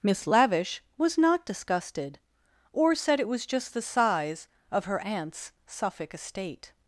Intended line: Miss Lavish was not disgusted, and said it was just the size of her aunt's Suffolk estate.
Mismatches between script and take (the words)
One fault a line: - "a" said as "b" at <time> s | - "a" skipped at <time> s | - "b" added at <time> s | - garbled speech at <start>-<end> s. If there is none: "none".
- "and" said as "or" at 2.7 s